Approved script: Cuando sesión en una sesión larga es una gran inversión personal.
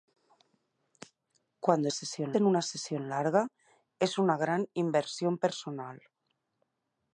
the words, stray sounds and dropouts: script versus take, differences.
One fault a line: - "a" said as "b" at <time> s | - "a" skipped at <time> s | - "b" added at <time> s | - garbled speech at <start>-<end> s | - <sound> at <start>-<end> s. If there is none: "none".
none